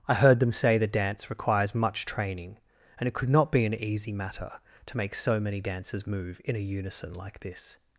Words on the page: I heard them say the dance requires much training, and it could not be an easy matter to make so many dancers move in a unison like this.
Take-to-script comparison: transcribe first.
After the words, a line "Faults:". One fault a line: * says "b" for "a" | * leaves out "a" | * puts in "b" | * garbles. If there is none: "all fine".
I heard them say the dance requires much training, and it could not be an easy matter to make so many dancers move in a unison like this.
Faults:
all fine